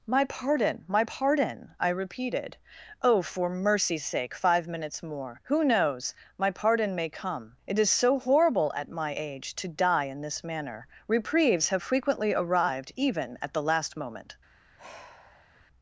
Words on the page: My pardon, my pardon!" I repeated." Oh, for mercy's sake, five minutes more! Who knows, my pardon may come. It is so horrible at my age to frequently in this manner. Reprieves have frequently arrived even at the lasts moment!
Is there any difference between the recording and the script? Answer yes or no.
yes